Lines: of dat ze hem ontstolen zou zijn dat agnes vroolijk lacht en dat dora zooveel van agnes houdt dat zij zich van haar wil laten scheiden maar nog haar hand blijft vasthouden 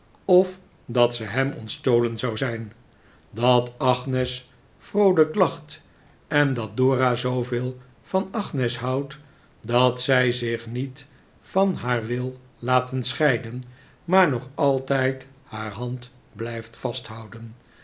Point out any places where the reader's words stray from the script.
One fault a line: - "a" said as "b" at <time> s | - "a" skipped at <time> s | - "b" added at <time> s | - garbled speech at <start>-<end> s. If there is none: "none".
- "niet" added at 10.7 s
- "altijd" added at 14.5 s